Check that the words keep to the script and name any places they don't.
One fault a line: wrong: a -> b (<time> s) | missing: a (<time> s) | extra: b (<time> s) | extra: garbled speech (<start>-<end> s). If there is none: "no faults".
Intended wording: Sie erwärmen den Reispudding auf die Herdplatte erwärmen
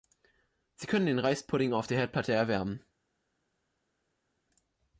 wrong: erwärmen -> können (0.9 s)
wrong: die -> der (1.9 s)